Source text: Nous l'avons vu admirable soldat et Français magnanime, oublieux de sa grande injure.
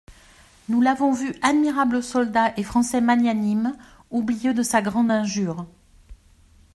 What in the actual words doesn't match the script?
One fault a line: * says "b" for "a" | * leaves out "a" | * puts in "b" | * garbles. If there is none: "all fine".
all fine